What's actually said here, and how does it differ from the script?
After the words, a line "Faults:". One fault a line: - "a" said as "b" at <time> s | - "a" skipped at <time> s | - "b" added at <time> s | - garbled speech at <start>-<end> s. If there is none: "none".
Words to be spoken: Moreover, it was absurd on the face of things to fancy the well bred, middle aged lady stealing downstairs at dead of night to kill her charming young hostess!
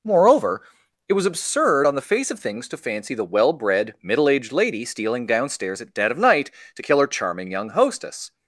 Moreover, it was absurd on the face of things to fancy the well bred, middle aged lady stealing downstairs at dead of night to kill her charming young hostess!
Faults:
none